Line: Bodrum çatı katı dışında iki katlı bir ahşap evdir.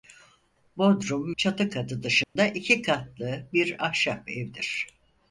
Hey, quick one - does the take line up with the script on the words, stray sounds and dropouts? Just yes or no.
no